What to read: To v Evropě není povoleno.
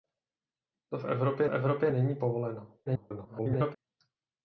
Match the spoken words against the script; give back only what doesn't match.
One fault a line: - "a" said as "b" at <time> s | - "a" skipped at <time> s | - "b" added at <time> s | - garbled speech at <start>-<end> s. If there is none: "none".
- "Evropě" added at 1.5 s
- garbled speech at 2.9-3.8 s